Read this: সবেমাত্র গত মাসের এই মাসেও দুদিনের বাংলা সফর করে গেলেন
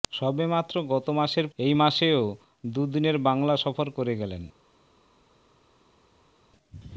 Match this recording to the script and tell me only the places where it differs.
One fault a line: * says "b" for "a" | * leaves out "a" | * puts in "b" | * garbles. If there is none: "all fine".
all fine